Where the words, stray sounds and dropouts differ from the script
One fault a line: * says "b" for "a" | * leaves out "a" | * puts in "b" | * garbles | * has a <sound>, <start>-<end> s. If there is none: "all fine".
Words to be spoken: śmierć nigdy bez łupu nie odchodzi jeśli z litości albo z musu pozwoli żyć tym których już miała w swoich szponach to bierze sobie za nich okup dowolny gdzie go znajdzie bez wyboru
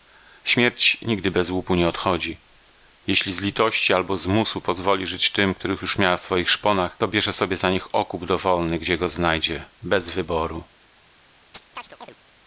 * has a chirp, 11.5-12.2 s